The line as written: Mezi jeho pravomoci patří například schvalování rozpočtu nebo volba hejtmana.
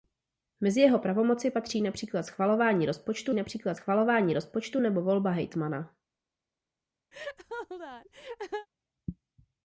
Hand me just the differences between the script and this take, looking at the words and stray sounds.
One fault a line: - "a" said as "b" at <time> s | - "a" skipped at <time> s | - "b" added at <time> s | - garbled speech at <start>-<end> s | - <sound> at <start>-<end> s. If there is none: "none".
- "například schvalování rozpočtu" added at 3.3 s
- laugh at 7.1-8.7 s